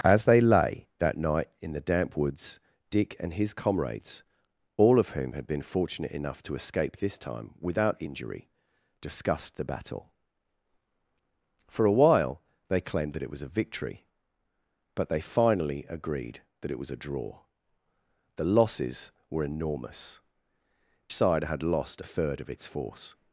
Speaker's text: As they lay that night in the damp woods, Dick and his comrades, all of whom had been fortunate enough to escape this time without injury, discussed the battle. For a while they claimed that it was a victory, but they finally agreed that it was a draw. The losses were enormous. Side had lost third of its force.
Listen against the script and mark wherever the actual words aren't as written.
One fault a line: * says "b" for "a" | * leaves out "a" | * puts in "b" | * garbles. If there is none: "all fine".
all fine